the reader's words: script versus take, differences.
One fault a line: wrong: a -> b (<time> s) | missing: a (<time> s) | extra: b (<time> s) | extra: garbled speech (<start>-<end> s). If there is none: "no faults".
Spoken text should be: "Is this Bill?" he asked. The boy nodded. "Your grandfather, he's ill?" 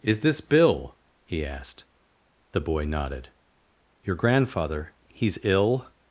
no faults